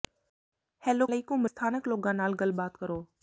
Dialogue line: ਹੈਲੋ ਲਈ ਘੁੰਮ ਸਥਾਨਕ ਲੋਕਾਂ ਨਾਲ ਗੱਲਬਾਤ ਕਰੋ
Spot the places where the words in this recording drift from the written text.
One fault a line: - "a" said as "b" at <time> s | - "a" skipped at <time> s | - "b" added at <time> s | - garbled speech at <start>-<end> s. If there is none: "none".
none